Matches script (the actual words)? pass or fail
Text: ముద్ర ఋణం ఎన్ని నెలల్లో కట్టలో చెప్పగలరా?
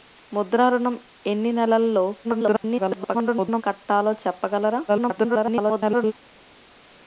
fail